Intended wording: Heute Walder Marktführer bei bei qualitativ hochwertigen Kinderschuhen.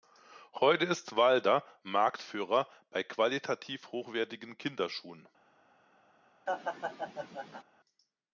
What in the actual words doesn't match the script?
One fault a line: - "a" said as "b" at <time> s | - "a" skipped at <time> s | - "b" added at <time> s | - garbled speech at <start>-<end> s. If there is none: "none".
- "ist" added at 0.8 s
- "bei" skipped at 3.0 s